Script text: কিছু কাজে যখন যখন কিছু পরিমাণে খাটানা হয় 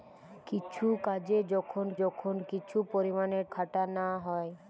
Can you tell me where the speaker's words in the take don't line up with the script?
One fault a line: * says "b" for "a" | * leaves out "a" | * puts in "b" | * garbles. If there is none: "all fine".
all fine